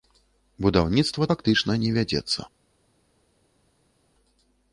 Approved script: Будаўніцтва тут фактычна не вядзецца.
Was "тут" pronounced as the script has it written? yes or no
no